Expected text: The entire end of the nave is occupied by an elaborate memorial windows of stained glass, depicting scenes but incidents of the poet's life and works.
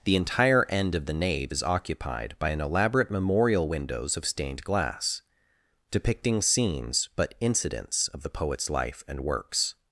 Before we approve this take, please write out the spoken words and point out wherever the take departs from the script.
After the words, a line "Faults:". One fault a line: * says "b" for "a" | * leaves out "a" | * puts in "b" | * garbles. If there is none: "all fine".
The entire end of the nave is occupied by an elaborate memorial windows of stained glass, depicting scenes but incidents of the poet's life and works.
Faults:
all fine